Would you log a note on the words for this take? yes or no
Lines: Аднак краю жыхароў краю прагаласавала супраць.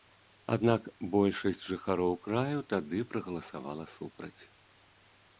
yes